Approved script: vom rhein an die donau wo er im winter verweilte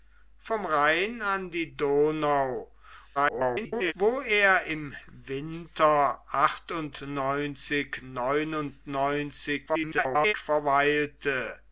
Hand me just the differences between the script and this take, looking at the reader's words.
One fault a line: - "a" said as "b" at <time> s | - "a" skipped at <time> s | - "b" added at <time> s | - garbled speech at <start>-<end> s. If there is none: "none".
- garbled speech at 3.2-3.9 s
- garbled speech at 9.7-10.3 s